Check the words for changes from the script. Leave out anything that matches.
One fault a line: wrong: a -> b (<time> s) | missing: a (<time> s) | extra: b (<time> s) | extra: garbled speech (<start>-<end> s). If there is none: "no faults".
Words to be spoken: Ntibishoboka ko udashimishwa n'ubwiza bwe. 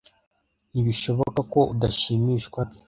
missing: n'ubwiza (2.6 s)